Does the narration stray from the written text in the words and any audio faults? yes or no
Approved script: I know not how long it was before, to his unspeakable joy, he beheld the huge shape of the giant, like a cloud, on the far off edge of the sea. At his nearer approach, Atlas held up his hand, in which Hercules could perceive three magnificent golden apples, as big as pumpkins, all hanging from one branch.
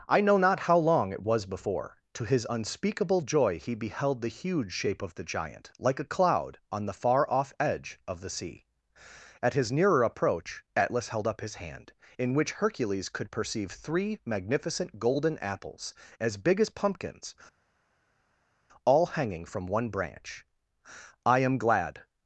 yes